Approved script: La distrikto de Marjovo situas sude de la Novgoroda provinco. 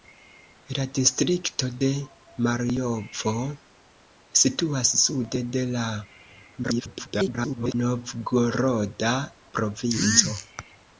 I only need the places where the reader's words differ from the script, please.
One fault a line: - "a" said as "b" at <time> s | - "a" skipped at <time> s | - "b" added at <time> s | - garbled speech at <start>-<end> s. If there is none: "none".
- garbled speech at 6.6-7.7 s